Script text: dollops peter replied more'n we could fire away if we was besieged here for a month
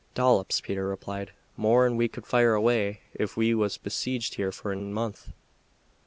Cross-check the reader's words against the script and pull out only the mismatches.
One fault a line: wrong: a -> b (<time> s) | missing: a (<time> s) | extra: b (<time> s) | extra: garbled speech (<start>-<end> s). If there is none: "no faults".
no faults